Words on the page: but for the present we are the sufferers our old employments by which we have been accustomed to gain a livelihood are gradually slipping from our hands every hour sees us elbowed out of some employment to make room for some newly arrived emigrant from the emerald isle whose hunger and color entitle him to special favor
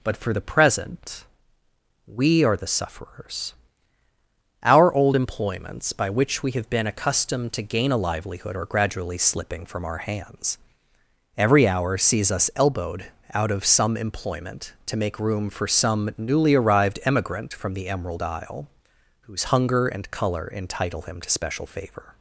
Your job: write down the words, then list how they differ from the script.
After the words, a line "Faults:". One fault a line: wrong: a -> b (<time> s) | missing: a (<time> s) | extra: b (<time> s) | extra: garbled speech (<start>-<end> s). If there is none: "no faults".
but for the present we are the sufferers our old employments by which we have been accustomed to gain a livelihood are gradually slipping from our hands every hour sees us elbowed out of some employment to make room for some newly arrived emigrant from the emerald isle whose hunger and color entitle him to special favor
Faults:
no faults